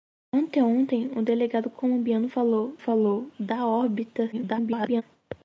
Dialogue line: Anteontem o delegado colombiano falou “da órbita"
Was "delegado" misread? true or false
false